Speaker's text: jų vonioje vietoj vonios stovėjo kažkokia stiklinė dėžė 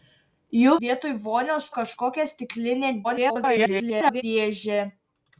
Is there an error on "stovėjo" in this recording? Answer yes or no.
yes